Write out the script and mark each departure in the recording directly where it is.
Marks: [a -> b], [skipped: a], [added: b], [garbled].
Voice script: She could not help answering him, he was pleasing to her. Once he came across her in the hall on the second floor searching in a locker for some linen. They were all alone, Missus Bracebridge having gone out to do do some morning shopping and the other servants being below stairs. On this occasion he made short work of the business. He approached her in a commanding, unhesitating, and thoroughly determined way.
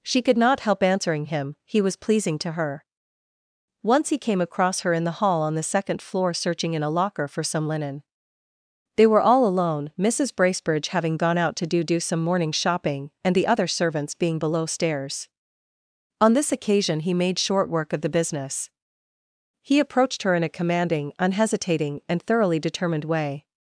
She could not help answering him, he was pleasing to her. Once he came across her in the hall on the second floor searching in a locker for some linen. They were all alone, Missus Bracebridge having gone out to do do some morning shopping and the other servants being below stairs. On this occasion he made short work of the business. He approached her in a commanding, unhesitating, and thoroughly determined way.